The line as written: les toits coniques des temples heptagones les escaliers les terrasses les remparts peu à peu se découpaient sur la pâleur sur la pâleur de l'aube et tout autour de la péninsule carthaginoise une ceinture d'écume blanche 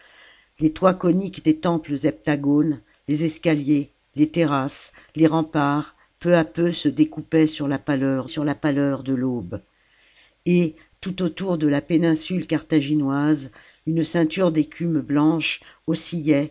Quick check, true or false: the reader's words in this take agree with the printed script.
true